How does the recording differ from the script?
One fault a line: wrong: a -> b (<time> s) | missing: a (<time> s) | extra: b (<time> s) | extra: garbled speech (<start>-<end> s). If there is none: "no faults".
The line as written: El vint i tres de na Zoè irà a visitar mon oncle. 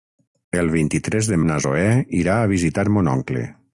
no faults